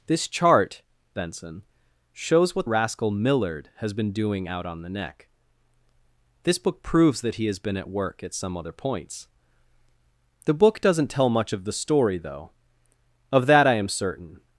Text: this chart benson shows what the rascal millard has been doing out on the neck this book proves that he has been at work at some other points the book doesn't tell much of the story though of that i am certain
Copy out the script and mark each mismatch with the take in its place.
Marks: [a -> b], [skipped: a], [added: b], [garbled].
this chart benson shows what [skipped: the] rascal millard has been doing out on the neck this book proves that he has been at work at some other points the book doesn't tell much of the story though of that i am certain